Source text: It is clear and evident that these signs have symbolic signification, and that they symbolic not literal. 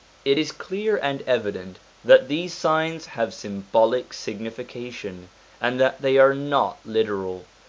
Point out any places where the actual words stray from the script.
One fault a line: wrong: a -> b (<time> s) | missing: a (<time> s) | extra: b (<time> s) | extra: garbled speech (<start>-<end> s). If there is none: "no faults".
wrong: symbolic -> are (6.2 s)